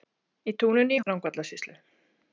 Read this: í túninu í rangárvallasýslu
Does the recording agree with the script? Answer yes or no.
yes